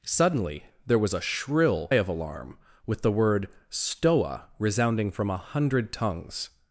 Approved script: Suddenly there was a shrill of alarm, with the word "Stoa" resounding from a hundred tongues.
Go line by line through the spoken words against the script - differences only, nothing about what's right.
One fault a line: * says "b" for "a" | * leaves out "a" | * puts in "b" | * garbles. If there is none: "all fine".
all fine